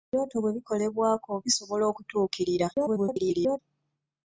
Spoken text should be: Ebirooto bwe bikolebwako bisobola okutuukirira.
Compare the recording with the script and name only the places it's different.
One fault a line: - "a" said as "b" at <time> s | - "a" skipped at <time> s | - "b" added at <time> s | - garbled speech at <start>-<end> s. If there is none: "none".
- garbled speech at 2.7-3.6 s